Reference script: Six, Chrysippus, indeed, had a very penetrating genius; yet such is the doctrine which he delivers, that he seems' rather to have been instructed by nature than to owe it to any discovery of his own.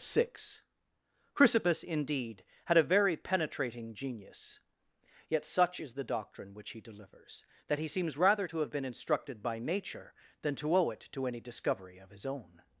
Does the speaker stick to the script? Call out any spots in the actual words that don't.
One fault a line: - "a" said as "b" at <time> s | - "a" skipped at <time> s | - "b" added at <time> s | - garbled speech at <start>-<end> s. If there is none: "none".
none